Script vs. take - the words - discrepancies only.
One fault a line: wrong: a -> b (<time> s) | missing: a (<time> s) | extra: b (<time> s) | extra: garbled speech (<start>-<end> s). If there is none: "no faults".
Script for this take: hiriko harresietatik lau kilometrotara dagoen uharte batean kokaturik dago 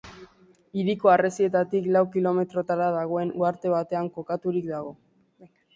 no faults